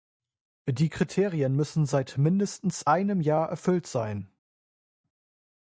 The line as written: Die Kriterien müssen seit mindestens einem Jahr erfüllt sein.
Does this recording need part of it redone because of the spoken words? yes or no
no